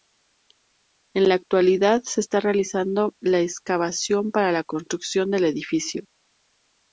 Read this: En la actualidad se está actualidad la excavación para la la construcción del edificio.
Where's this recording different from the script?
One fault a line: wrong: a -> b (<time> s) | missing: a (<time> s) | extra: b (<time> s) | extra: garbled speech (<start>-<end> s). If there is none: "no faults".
wrong: actualidad -> realizando (2.4 s)
missing: la (4.6 s)